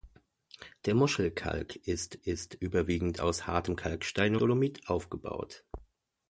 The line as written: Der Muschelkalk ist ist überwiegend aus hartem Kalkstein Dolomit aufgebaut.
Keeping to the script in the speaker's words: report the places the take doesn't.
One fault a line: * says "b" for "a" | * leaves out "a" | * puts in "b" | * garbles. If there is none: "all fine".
all fine